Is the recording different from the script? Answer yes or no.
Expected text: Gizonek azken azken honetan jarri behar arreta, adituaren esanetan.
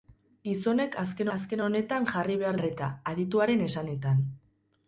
no